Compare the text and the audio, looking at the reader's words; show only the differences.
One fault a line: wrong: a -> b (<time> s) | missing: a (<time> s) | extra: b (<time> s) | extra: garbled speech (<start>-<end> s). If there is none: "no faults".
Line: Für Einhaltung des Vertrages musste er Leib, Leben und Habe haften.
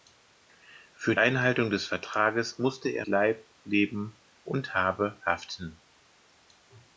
no faults